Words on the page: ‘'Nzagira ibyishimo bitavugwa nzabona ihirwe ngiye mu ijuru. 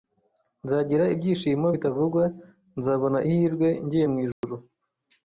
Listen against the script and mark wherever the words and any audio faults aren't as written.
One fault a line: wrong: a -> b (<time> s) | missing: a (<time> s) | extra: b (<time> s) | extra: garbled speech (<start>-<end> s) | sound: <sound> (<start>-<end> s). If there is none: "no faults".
sound: dropout (4.3-4.4 s)